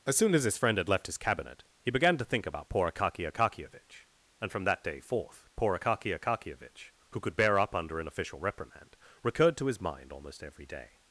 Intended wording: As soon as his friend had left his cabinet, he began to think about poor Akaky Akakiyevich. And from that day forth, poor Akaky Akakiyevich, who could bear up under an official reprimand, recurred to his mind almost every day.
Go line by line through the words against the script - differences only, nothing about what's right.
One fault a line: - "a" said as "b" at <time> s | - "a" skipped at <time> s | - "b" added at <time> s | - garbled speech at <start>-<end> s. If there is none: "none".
none